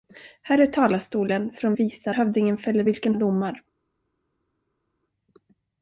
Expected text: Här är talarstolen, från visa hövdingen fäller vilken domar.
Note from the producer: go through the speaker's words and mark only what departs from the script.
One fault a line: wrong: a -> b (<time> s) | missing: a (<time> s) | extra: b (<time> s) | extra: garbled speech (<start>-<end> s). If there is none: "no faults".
no faults